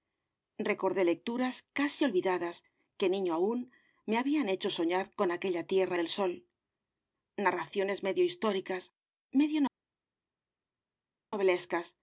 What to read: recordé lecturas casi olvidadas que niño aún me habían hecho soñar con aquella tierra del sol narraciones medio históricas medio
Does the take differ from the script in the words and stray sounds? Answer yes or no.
no